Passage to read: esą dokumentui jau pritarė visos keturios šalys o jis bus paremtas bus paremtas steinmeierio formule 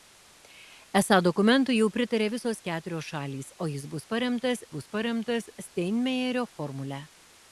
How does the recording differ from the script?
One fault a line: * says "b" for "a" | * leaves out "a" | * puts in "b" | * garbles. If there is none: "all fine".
all fine